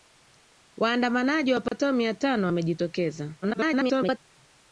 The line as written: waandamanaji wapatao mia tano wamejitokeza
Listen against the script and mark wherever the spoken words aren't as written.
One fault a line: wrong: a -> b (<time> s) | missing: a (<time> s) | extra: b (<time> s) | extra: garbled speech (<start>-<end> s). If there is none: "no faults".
extra: garbled speech (3.4-4.2 s)